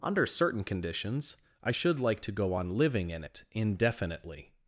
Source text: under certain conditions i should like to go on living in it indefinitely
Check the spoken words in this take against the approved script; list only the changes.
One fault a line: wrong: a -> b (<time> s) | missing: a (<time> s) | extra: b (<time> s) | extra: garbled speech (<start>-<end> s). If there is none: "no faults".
no faults